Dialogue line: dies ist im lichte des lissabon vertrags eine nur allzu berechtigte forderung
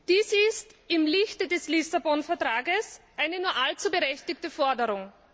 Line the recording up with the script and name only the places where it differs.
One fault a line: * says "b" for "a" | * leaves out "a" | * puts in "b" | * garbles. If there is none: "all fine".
all fine